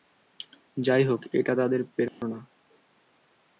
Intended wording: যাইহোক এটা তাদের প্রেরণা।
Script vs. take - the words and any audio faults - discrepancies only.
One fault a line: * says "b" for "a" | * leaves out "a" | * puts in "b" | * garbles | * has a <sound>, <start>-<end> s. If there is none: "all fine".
* has a dropout, 2.1-2.2 s